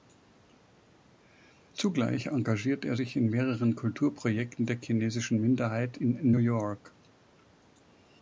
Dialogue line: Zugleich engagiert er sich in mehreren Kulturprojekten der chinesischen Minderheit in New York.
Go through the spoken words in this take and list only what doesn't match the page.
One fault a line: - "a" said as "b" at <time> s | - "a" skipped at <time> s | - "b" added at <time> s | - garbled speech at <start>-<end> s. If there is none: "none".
none